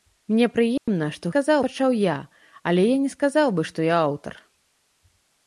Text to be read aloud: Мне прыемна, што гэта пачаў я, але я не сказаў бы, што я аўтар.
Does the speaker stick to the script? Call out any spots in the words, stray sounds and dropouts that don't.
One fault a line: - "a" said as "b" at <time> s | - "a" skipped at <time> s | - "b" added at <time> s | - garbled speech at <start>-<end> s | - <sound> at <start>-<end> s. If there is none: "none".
- dropout at 0.8-0.9 s
- "гэта" said as "сказаў" at 1.3 s